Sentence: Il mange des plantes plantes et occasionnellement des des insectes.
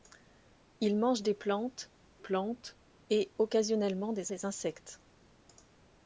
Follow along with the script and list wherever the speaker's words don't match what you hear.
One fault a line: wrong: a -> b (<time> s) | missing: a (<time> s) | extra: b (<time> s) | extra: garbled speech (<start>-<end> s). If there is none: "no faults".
no faults